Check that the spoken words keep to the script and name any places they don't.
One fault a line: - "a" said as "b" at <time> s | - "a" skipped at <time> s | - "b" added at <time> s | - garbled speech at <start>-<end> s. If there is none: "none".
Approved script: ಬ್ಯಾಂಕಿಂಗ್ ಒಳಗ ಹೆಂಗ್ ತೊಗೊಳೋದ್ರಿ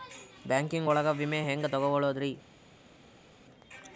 - "ವಿಮೆ" added at 1.1 s